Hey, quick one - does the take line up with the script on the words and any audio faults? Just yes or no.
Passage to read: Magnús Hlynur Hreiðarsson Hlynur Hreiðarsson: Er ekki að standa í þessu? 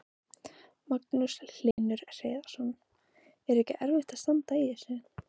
no